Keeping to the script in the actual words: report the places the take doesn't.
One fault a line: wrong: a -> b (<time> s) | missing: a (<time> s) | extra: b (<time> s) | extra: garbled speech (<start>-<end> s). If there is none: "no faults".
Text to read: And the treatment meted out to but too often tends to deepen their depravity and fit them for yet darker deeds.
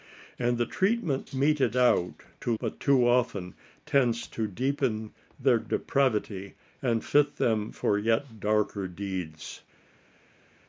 no faults